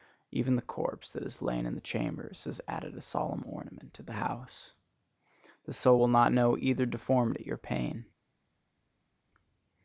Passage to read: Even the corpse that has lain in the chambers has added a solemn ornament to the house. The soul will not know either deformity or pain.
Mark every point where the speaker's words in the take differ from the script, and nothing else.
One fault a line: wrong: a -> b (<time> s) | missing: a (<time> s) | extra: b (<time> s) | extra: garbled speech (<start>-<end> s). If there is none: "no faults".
no faults